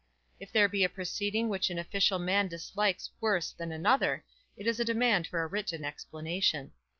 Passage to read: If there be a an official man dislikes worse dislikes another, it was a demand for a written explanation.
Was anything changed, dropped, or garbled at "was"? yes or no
yes